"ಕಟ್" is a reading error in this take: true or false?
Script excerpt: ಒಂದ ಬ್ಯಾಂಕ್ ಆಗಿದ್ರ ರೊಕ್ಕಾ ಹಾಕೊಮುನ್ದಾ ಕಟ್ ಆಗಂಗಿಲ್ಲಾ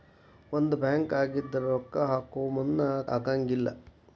true